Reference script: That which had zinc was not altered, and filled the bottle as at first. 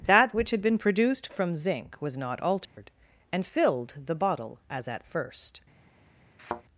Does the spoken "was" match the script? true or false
true